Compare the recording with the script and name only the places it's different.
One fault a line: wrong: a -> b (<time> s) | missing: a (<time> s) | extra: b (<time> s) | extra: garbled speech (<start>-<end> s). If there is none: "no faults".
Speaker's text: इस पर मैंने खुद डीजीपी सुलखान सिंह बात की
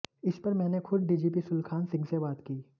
extra: से (2.0 s)